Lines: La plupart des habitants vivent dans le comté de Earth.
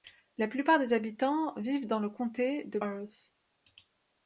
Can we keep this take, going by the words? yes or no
yes